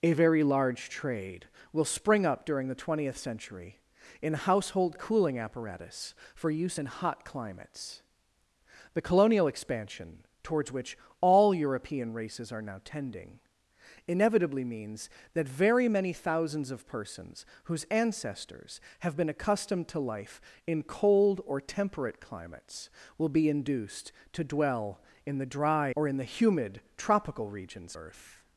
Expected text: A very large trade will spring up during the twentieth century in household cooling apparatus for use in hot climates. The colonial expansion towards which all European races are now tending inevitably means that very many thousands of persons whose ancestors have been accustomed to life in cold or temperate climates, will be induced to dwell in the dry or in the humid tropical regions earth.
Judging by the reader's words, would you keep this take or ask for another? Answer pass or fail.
pass